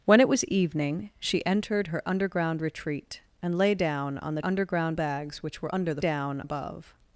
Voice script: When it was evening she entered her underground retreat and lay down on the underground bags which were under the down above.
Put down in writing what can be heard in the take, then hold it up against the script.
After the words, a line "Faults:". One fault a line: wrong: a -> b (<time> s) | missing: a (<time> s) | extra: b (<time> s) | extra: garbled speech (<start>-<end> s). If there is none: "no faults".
When it was evening she entered her underground retreat and lay down on the underground bags which were under the down above.
Faults:
no faults